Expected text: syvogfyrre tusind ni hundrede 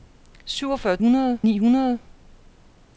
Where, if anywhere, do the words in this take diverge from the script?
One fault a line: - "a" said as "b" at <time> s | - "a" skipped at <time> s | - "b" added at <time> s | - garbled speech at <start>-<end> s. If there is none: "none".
- "tusind" said as "hundrede" at 1.0 s